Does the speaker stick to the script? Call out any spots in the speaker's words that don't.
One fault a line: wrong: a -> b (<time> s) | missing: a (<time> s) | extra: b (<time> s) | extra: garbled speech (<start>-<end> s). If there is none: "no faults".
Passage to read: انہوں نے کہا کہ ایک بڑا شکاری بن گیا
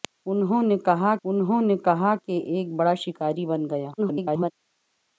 extra: انہوں نے کہا (1.2 s)
extra: garbled speech (4.0-4.5 s)